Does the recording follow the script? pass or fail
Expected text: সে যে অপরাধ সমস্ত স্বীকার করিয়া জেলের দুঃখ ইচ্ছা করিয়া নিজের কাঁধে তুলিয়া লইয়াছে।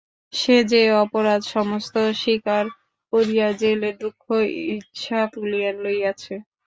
fail